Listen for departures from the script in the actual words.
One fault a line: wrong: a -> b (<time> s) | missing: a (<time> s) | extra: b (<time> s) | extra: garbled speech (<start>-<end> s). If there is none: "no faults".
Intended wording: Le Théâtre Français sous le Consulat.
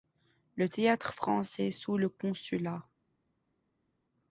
no faults